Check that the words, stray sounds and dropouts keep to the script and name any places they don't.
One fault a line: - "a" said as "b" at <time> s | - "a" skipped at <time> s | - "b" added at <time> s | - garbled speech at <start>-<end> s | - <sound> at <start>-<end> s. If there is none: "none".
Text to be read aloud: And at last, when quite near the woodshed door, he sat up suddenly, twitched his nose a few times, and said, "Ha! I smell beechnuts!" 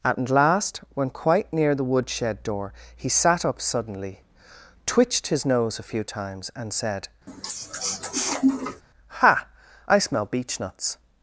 - "And" skipped at 0.0 s
- sniff at 7.3-8.8 s